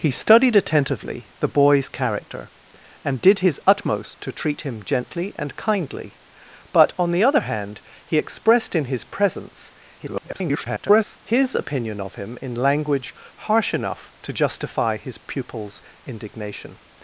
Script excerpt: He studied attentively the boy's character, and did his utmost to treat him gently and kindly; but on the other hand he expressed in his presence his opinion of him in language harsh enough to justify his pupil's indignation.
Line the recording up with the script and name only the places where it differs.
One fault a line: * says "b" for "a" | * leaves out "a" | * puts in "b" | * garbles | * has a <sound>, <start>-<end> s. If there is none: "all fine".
* garbles